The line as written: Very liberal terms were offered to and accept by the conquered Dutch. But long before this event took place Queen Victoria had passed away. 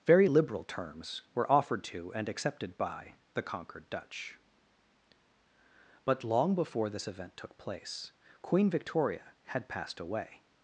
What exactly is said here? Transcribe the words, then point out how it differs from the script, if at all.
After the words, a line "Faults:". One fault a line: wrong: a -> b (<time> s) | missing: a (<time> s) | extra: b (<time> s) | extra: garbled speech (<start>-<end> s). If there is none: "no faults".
Very liberal terms were offered to and accepted by the conquered Dutch. But long before this event took place Queen Victoria had passed away.
Faults:
wrong: accept -> accepted (2.3 s)